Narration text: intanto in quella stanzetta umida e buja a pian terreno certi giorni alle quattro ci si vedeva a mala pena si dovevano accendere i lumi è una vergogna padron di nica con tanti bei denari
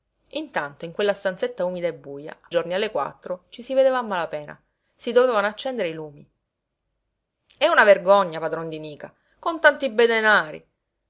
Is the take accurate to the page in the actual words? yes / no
no